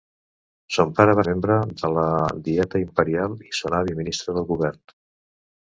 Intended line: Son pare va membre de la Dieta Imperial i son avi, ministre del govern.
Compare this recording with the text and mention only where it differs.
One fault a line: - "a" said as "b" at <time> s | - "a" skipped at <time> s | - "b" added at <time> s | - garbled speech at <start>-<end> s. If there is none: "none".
none